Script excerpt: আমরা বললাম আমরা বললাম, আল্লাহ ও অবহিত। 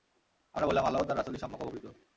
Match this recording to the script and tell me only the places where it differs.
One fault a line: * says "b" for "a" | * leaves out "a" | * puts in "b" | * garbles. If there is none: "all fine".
* says "আল্লাহ ও তাঁর রাসূলই সম্যক" for "আমরা বললাম আল্লাহ ও"